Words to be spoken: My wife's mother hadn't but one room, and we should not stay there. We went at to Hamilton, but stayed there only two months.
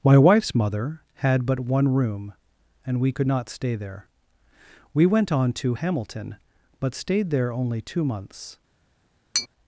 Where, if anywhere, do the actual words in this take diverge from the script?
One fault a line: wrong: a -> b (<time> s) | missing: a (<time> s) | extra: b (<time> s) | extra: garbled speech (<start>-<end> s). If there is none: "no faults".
wrong: hadn't -> had (1.2 s)
wrong: should -> could (3.1 s)
wrong: at -> on (5.3 s)